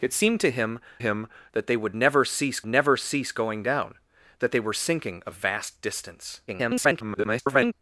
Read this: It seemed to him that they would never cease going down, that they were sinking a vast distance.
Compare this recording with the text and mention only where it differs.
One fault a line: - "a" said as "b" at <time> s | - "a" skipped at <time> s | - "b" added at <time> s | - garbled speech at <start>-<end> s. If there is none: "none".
- "him" added at 1.0 s
- "never cease" added at 2.6 s
- garbled speech at 6.5-7.7 s